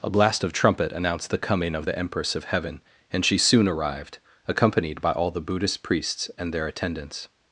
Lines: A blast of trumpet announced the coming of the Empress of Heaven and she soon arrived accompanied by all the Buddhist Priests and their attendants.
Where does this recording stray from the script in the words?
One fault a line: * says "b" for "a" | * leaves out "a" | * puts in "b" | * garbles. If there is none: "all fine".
all fine